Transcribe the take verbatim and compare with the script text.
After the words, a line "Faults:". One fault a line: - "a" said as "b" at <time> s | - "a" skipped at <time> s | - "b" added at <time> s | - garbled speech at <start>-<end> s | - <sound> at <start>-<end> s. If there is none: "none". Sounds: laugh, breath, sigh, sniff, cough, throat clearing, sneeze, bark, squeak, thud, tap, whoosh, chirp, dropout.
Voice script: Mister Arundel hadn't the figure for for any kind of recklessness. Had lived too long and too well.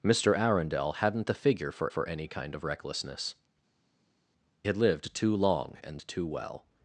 Mister Arundel hadn't the figure for for any kind of recklessness. Had lived too long and too well.
Faults:
none